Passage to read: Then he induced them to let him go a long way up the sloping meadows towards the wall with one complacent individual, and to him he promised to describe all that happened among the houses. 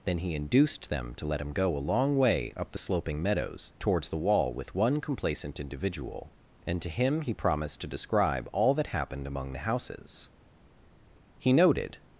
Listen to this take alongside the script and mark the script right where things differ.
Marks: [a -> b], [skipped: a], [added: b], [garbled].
Then he induced them to let him go a long way up the sloping meadows towards the wall with one complacent individual, and to him he promised to describe all that happened among the houses. [added: He noted]